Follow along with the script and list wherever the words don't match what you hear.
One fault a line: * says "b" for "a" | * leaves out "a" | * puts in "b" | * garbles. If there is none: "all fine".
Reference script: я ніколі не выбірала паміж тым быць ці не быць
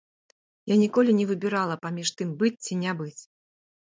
all fine